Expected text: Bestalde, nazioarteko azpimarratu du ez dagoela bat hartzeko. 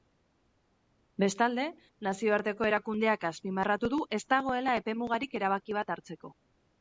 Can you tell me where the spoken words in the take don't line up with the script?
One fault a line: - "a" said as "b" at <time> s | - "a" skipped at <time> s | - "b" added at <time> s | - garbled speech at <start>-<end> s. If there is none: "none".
- "erakundeak" added at 2.7 s
- "epemugarik erabaki" added at 4.8 s